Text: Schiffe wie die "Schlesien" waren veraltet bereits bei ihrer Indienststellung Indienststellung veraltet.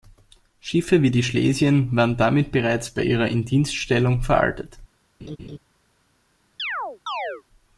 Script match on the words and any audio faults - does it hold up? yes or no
no